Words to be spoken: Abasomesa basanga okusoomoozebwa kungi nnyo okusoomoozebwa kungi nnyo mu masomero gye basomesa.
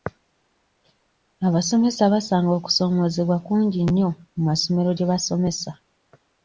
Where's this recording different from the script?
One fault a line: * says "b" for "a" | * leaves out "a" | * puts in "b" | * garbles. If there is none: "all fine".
* leaves out "okusoomoozebwa kungi nnyo"